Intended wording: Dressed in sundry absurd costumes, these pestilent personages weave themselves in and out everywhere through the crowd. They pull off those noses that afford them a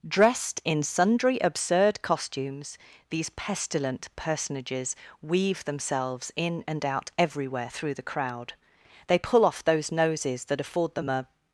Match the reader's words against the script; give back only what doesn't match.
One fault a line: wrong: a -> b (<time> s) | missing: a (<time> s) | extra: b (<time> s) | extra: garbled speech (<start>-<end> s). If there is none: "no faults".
no faults